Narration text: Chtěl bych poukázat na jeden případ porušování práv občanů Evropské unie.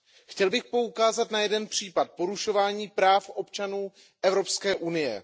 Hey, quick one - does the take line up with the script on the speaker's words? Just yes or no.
yes